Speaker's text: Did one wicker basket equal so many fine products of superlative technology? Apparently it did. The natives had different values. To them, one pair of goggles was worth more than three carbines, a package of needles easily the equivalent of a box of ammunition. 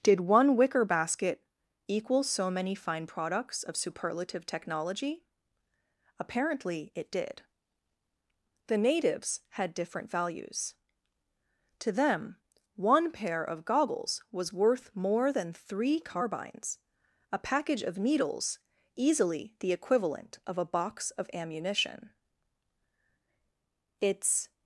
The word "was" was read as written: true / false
true